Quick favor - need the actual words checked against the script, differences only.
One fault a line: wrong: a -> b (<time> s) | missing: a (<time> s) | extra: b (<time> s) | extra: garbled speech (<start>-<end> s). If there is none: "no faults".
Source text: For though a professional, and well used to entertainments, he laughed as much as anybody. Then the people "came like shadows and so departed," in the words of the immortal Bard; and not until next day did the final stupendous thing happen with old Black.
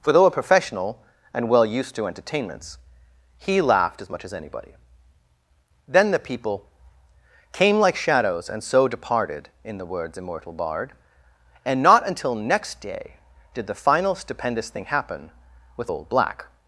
missing: of the (10.2 s)